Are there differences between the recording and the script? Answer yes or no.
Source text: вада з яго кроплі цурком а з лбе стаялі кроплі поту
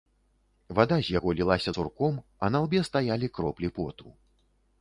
yes